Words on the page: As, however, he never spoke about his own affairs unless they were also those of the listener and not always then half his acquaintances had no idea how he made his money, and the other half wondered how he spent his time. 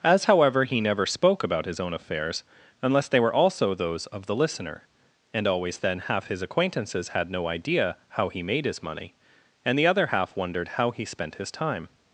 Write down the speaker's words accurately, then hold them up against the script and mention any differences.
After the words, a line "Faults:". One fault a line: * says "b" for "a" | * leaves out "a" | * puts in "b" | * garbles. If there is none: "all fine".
As, however, he never spoke about his own affairs unless they were also those of the listener and always then half his acquaintances had no idea how he made his money, and the other half wondered how he spent his time.
Faults:
* leaves out "not"